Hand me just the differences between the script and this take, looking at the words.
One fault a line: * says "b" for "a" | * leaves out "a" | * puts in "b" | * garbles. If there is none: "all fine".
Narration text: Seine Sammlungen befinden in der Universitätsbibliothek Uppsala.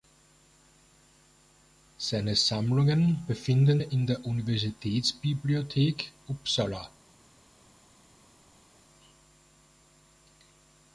all fine